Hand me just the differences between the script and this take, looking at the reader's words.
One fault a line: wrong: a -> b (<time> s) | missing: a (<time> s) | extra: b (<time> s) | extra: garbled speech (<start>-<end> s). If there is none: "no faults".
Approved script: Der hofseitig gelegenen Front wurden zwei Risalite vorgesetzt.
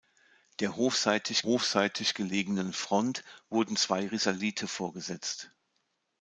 extra: hofseitig (1.4 s)